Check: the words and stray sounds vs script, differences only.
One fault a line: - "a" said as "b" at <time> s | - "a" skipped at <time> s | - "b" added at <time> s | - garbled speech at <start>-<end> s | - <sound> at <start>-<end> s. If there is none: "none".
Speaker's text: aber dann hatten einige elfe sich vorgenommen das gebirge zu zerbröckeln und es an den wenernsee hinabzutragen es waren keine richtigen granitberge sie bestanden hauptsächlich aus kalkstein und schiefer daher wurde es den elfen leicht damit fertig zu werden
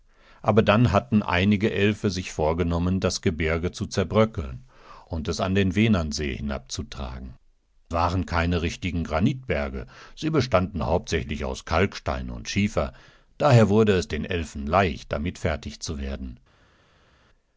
- "es" skipped at 7.3 s